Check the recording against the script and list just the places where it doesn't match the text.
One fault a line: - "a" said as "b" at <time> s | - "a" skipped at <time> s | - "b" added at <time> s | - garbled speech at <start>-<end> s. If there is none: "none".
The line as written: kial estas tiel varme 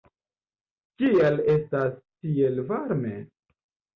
none